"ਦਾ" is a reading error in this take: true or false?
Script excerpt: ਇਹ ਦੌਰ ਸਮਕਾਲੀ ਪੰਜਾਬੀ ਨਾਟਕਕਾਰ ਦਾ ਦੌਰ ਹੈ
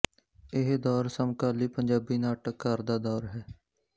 false